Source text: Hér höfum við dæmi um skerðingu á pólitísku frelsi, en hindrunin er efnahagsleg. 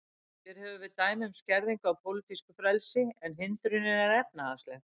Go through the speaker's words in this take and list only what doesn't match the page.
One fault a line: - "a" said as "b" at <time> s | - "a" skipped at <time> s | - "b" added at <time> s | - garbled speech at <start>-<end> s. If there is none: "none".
none